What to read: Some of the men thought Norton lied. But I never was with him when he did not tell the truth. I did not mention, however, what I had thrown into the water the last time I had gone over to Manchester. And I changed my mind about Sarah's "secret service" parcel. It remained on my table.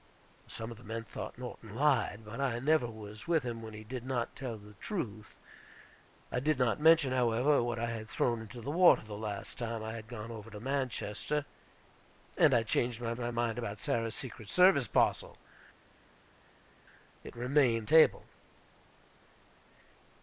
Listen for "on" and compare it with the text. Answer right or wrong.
wrong